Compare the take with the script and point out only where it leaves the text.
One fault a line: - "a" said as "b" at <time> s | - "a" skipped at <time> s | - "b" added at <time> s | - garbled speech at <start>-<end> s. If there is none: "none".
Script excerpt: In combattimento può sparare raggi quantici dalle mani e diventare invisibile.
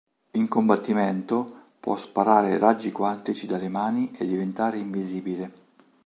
none